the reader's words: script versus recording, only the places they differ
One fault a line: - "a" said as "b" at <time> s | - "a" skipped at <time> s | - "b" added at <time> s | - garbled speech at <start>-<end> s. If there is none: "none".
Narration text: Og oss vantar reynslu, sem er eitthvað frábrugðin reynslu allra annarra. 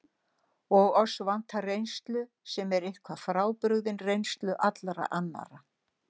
none